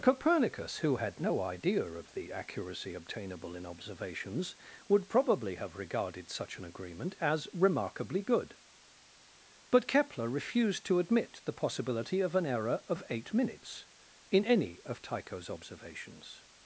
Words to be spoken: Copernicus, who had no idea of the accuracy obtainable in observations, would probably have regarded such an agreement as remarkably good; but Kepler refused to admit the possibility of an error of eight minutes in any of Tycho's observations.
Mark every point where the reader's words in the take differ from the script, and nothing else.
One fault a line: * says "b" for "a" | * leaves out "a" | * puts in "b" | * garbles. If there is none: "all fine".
all fine